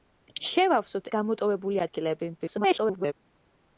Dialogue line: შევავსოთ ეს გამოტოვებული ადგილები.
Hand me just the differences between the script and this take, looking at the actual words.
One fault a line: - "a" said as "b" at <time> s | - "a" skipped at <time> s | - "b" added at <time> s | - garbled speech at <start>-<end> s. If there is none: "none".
- "ეს" skipped at 1.1 s
- garbled speech at 2.4-3.1 s